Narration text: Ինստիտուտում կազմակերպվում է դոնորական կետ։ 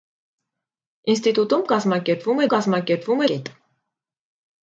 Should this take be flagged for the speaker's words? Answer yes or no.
yes